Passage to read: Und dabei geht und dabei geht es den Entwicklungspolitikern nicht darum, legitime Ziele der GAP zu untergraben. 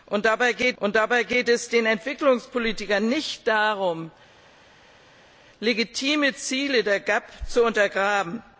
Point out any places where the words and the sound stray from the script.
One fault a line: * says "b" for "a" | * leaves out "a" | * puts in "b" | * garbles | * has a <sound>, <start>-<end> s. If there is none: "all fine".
all fine